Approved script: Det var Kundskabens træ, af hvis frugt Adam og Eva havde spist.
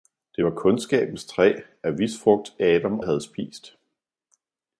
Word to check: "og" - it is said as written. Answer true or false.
false